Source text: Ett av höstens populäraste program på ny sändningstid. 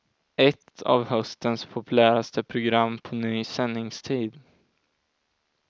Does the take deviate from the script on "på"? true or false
false